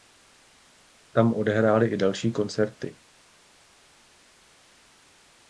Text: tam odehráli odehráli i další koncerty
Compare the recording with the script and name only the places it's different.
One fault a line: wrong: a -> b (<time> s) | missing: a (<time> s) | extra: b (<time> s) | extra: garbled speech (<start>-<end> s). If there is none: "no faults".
missing: odehráli (1.9 s)